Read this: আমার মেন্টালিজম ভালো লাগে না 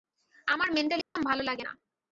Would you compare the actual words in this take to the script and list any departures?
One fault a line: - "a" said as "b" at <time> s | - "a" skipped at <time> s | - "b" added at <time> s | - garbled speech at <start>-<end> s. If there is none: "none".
none